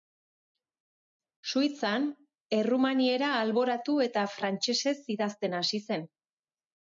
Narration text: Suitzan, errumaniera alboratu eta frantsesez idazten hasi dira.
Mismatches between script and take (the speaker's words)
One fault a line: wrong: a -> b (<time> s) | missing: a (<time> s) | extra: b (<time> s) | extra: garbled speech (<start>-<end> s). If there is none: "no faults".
wrong: dira -> zen (5.9 s)